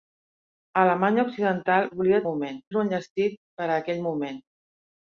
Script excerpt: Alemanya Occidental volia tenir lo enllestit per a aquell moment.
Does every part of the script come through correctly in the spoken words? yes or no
no